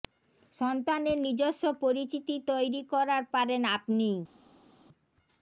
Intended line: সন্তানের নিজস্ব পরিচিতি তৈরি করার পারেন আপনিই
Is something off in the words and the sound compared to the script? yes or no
no